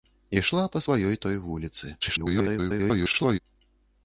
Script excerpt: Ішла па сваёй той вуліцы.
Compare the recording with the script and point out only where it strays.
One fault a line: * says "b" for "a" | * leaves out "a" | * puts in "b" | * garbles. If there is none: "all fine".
* garbles